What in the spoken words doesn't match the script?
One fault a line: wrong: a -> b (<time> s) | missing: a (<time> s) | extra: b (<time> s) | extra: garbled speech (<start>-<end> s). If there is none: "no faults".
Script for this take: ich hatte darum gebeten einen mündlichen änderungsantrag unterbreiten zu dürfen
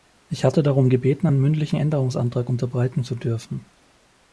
no faults